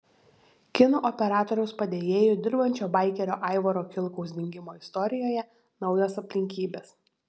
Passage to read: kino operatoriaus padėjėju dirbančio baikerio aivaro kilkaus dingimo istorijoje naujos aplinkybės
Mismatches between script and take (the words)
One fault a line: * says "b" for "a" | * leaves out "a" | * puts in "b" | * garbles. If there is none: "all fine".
all fine